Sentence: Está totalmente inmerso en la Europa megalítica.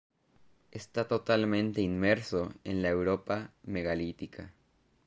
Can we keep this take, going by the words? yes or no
yes